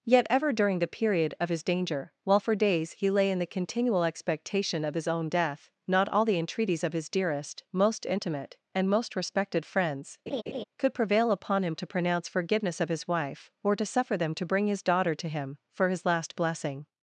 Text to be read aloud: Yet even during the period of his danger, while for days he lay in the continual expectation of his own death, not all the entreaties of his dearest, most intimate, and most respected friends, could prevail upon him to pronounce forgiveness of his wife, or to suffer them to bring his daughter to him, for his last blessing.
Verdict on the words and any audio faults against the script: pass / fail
fail